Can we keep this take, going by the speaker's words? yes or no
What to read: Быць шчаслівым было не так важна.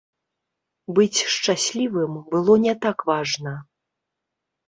yes